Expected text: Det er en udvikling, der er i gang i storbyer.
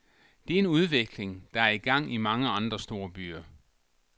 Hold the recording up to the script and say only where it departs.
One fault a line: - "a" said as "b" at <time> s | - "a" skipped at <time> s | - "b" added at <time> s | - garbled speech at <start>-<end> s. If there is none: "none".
- "mange andre" added at 2.2 s